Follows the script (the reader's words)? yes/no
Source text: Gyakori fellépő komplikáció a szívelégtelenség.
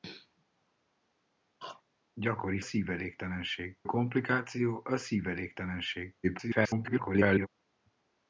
no